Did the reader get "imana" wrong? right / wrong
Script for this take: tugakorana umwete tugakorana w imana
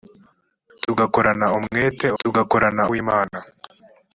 right